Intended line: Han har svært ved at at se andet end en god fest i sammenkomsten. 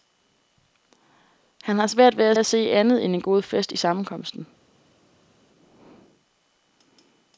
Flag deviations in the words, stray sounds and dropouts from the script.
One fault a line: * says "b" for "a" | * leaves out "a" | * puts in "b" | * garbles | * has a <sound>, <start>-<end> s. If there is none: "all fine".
all fine